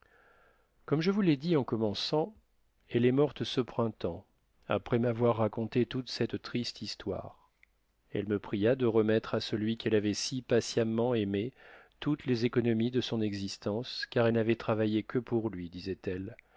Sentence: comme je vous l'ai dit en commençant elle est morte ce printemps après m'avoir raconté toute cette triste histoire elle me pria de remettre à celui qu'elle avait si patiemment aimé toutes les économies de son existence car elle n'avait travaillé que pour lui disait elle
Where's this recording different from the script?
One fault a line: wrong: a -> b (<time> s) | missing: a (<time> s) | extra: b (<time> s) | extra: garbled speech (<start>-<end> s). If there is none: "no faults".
missing: elle (14.3 s)